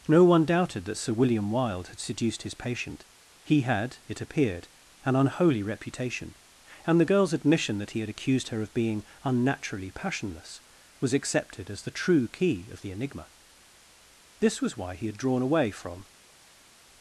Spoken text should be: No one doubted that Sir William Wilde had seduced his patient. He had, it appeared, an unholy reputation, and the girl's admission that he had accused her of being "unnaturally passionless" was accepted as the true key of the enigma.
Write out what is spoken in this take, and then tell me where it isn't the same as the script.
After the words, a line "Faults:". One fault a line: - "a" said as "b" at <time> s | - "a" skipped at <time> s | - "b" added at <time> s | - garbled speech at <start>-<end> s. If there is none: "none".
No one doubted that Sir William Wilde had seduced his patient. He had, it appeared, an unholy reputation, and the girl's admission that he had accused her of being "unnaturally passionless" was accepted as the true key of the enigma. This was why he had drawn away from
Faults:
- "This was why he had drawn away from" added at 14.4 s